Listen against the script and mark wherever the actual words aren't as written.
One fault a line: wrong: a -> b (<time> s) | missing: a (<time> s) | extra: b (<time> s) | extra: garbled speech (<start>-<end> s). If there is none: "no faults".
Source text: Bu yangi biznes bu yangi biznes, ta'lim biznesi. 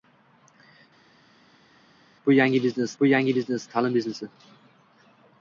no faults